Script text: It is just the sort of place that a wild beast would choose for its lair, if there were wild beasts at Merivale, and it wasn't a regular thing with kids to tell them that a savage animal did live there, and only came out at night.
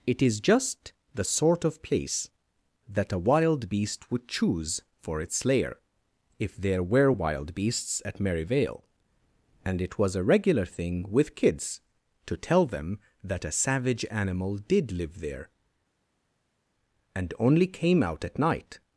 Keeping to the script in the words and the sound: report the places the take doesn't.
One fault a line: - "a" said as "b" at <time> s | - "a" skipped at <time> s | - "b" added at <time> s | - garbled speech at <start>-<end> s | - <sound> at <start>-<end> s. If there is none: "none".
- "wasn't" said as "was" at 10.0 s